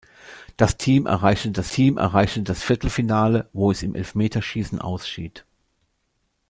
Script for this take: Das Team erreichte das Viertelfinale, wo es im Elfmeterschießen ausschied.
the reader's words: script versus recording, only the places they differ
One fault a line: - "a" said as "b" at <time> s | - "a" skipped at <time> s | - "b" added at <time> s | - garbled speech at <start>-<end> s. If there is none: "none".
- "Team erreichte das" added at 1.7 s